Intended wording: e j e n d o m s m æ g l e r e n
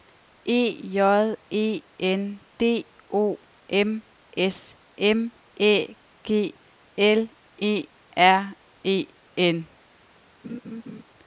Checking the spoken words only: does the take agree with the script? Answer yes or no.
yes